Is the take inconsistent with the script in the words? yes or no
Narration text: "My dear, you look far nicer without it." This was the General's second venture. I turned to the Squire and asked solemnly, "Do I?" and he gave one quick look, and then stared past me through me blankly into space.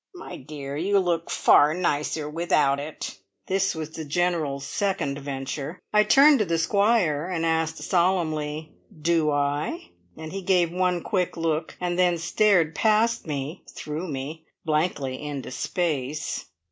no